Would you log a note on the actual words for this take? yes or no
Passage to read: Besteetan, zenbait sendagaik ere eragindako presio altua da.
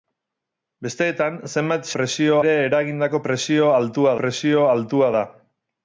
yes